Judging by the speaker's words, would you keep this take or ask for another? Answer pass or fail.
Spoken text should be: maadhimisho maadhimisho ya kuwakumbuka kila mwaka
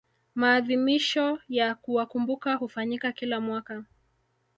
fail